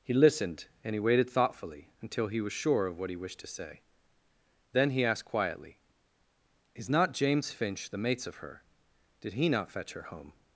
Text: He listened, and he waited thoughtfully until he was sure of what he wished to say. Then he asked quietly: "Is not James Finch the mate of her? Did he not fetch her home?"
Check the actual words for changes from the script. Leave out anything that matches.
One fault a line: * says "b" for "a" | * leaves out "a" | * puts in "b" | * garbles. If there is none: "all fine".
* says "mates" for "mate"